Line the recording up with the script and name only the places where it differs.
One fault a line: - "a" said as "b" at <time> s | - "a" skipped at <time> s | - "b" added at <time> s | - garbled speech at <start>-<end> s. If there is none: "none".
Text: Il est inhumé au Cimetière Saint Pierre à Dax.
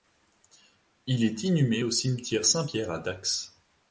none